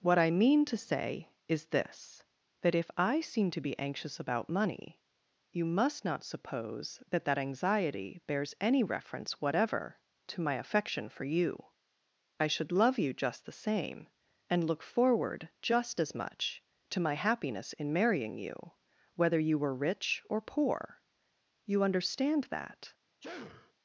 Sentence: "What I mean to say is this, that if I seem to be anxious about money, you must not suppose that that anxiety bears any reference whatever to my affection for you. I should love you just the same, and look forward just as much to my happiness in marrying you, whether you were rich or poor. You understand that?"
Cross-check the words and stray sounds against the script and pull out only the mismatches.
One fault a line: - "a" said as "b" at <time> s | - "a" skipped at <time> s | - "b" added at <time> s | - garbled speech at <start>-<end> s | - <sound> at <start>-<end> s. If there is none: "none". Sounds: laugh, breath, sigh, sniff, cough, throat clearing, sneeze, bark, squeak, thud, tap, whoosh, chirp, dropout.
- sneeze at 23.2-23.7 s